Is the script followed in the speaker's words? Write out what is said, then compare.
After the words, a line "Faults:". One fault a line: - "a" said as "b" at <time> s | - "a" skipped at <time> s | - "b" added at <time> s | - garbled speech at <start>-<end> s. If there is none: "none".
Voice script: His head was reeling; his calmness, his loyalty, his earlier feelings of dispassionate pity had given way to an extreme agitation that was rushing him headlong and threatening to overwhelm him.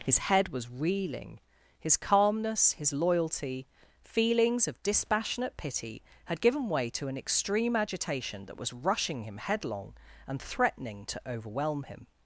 His head was reeling; his calmness, his loyalty, feelings of dispassionate pity had given way to an extreme agitation that was rushing him headlong and threatening to overwhelm him.
Faults:
- "his earlier" skipped at 3.7 s